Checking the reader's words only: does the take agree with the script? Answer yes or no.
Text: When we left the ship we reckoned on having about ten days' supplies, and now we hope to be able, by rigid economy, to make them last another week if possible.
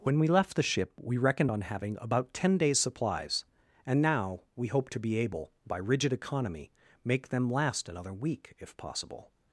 no